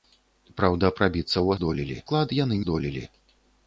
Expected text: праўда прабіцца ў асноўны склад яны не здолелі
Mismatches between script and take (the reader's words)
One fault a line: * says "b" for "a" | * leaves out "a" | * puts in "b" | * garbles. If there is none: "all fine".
* says "здолелі" for "асноўны"
* leaves out "не"